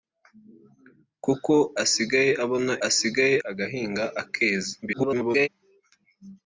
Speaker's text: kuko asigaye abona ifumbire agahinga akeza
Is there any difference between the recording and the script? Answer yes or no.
yes